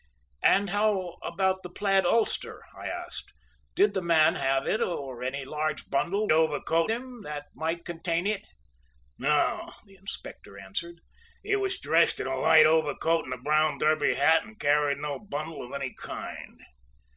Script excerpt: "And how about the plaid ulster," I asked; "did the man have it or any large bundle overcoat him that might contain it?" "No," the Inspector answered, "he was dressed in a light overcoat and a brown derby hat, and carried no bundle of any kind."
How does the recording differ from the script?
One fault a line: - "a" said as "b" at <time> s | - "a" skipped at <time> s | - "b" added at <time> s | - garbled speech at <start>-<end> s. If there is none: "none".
none